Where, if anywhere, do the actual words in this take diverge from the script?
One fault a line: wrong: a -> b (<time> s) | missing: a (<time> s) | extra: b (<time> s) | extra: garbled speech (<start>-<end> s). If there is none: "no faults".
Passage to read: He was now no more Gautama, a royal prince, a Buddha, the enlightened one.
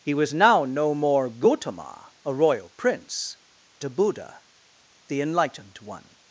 no faults